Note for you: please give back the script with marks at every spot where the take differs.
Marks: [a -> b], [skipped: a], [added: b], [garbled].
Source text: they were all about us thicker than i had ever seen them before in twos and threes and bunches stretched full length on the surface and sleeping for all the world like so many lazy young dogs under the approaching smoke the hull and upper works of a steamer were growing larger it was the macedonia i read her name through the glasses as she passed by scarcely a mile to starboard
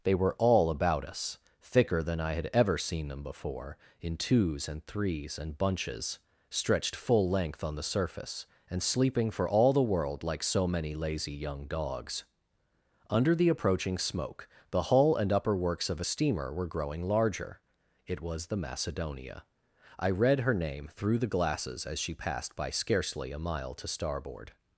they were all about us thicker than i had ever seen them before in twos and threes and bunches stretched full length on the surface and sleeping for all the world like so many lazy young dogs under the approaching smoke the hull and upper works of a steamer were growing larger it was the macedonia i read her name through the glasses as she passed by scarcely a mile to starboard